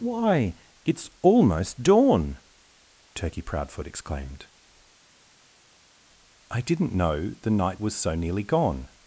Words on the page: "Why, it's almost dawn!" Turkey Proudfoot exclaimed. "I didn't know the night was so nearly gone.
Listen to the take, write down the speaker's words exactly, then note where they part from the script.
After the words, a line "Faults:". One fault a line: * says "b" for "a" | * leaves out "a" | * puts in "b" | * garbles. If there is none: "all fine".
"Why, it's almost dawn!" Turkey Proudfoot exclaimed. "I didn't know the night was so nearly gone.
Faults:
all fine